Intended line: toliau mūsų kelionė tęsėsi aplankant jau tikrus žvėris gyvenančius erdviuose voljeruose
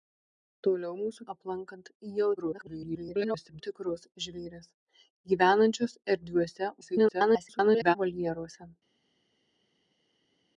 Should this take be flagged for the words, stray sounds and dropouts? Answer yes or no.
yes